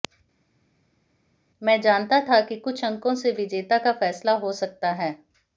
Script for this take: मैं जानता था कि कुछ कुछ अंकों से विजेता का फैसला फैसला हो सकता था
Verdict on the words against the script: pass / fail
fail